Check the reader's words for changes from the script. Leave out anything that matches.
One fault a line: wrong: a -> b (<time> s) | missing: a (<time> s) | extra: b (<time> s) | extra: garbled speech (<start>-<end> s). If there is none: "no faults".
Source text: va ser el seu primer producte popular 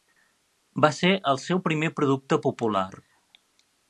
no faults